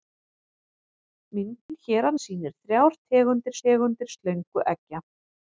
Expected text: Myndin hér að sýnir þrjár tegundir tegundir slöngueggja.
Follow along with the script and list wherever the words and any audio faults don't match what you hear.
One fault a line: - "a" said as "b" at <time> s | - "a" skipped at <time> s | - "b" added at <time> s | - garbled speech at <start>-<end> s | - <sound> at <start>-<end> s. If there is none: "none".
- dropout at 1.6-1.7 s